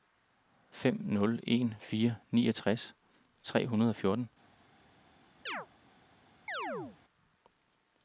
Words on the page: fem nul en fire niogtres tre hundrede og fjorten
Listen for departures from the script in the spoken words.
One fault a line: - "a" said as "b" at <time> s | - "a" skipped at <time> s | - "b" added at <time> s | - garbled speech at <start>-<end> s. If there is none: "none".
none